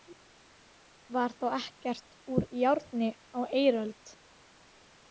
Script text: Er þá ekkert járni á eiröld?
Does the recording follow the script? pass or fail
fail